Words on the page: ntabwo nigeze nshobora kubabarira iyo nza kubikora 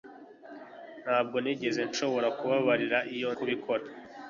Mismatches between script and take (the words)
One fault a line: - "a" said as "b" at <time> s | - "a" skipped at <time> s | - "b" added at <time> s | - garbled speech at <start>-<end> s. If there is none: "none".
- "nza" skipped at 3.3 s